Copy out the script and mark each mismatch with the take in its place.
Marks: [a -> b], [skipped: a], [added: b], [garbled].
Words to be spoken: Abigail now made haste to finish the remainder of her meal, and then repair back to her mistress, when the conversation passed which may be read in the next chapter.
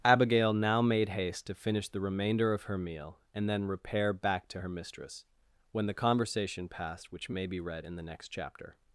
Abigail now made haste to finish the remainder of her meal, and then repair back to her mistress, when the conversation passed which may be read in the next chapter.